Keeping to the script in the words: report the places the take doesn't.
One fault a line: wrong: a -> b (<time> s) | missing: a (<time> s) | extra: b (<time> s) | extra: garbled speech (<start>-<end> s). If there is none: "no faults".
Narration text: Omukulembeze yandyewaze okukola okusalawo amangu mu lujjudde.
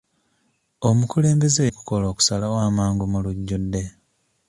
missing: yandyewaze (1.6 s)